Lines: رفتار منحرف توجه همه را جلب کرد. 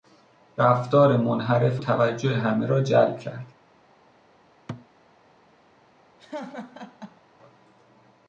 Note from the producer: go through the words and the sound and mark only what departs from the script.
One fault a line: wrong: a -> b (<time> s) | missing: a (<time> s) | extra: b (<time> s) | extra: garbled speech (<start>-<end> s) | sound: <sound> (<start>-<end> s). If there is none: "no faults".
sound: thud (4.7-4.9 s)
sound: laugh (6.2-7.2 s)